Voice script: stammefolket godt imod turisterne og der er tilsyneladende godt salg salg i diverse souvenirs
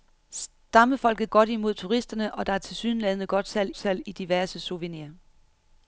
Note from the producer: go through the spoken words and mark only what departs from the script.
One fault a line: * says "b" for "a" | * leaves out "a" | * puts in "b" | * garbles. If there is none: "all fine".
all fine